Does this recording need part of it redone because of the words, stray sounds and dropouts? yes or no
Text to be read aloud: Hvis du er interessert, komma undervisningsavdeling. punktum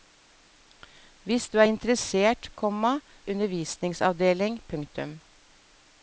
no